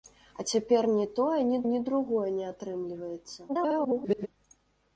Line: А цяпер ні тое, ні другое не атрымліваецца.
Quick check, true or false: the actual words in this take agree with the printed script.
false